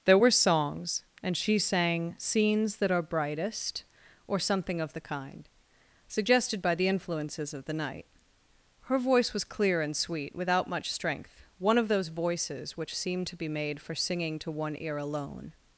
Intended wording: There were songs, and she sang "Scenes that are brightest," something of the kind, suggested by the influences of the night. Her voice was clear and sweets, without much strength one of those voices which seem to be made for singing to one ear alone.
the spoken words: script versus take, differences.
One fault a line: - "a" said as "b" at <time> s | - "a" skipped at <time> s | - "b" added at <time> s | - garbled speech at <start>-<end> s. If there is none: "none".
- "or" added at 4.3 s
- "sweets" said as "sweet" at 10.0 s